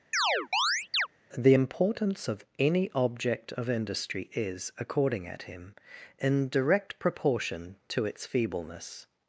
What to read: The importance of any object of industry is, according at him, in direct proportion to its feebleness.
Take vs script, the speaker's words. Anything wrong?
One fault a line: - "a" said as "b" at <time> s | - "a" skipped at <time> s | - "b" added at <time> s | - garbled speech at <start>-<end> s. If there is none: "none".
none